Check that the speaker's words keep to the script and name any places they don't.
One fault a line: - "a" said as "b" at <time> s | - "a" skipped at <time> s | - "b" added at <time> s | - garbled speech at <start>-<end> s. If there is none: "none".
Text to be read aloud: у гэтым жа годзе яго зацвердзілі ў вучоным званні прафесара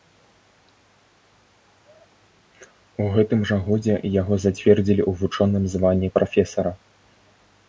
none